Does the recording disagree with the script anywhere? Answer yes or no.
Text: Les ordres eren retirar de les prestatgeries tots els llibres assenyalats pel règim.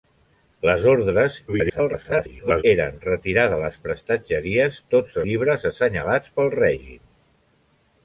yes